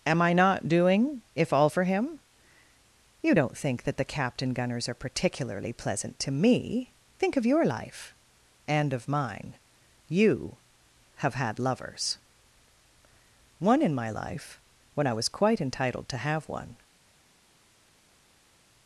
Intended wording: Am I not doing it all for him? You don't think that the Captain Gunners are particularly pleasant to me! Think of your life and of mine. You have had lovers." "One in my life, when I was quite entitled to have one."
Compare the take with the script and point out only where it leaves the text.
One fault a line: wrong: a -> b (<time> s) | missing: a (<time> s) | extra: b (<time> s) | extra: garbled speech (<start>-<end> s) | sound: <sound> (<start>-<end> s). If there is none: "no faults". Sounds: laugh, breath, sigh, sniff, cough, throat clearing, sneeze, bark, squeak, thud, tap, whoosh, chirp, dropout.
wrong: it -> if (1.4 s)